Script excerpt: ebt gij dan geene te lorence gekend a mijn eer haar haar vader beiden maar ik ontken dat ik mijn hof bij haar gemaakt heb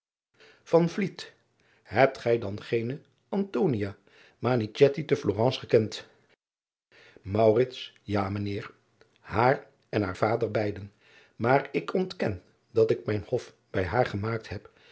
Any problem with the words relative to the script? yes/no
yes